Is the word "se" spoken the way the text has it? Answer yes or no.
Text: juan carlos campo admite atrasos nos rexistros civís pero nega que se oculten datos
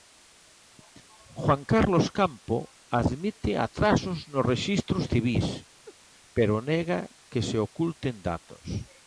yes